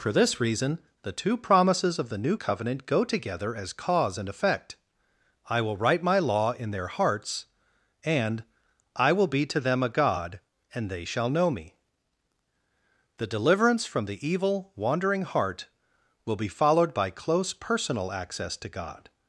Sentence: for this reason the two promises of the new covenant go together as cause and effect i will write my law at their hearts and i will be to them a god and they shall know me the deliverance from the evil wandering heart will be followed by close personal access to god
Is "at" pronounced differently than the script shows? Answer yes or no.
yes